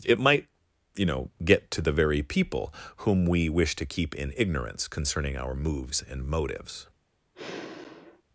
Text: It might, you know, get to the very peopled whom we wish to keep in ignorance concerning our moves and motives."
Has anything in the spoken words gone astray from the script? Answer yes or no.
yes